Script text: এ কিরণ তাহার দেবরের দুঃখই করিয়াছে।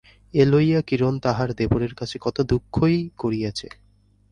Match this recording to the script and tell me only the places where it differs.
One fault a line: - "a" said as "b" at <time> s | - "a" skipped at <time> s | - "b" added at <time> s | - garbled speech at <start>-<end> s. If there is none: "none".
- "লইয়া" added at 0.5 s
- "কাছে কত" added at 1.9 s